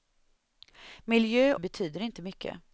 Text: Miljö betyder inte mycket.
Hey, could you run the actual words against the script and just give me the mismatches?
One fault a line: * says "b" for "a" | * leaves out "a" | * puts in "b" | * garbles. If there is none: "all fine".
all fine